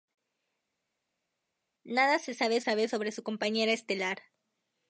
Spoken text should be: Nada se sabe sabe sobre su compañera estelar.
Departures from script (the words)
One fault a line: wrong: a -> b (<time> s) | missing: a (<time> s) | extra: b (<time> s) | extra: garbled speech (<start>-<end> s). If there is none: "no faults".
no faults